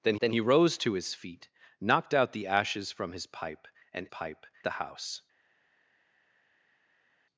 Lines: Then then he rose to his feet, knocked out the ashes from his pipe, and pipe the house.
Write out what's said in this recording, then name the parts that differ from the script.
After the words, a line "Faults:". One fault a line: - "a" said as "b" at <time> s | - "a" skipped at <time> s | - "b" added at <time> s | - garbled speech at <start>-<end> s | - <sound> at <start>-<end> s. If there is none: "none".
Then then he rose to his feet, knocked out the ashes from his pipe, and pipe the house.
Faults:
none